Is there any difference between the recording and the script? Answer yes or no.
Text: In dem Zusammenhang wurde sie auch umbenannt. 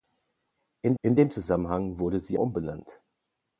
yes